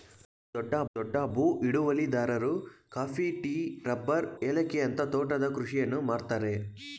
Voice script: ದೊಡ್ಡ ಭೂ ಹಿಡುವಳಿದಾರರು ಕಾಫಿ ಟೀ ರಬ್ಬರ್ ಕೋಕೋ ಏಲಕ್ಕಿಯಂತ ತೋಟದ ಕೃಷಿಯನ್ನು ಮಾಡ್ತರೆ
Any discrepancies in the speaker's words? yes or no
yes